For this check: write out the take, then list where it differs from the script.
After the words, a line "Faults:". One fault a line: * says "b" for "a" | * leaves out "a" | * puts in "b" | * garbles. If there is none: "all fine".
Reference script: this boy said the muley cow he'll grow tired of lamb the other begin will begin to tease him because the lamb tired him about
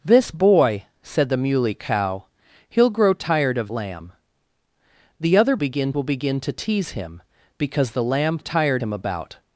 this boy said the muley cow he'll grow tired of lamb the other begin will begin to tease him because the lamb tired him about
Faults:
all fine